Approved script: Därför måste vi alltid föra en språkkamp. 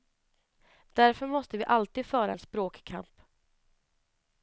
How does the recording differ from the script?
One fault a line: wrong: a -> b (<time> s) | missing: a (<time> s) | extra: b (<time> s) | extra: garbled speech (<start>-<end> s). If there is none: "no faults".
no faults